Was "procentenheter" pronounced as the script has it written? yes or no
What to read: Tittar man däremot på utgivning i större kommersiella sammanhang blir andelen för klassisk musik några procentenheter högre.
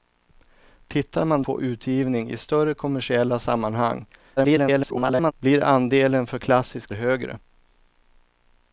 no